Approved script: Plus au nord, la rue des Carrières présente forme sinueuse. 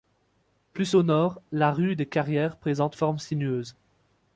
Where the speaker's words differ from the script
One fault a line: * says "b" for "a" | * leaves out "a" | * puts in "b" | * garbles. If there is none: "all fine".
all fine